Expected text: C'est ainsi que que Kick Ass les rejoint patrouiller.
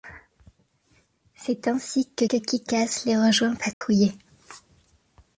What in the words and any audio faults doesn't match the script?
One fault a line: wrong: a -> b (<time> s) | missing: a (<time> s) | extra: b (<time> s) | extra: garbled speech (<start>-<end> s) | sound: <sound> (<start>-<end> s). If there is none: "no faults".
sound: dropout (3.7-3.8 s)